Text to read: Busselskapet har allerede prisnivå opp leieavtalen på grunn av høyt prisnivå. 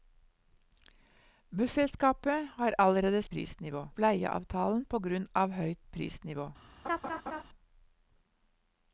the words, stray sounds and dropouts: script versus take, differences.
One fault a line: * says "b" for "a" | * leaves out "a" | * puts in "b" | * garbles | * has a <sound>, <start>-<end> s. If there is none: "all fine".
* has a laugh, 6.8-7.4 s